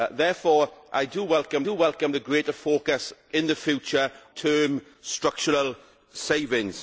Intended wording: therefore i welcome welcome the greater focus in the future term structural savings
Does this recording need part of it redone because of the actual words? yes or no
no